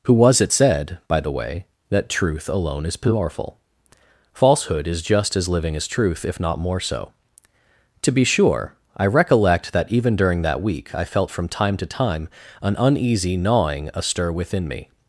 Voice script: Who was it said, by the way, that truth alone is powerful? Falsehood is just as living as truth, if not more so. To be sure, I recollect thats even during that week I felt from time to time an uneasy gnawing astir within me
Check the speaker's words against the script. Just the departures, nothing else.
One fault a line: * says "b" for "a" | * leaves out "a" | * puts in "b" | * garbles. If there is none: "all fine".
* says "that" for "thats"